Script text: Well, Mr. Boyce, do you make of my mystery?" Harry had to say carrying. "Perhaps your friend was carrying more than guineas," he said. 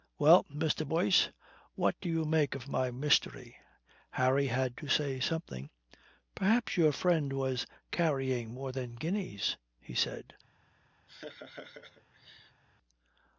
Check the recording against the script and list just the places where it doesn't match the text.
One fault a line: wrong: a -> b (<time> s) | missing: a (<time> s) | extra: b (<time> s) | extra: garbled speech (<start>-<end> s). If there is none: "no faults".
extra: what (1.8 s)
wrong: carrying -> something (5.2 s)